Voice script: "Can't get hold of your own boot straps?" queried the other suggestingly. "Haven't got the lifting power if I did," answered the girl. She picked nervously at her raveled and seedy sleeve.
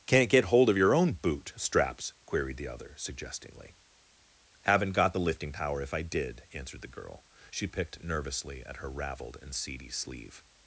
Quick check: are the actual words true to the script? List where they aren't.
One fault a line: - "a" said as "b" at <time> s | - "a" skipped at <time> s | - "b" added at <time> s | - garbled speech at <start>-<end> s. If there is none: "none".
none